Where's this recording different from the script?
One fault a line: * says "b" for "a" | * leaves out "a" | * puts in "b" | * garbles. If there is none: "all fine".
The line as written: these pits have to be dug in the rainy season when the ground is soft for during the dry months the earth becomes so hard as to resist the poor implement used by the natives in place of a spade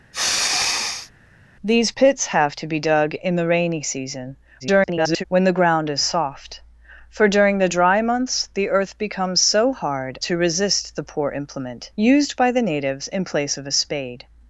* garbles
* leaves out "as"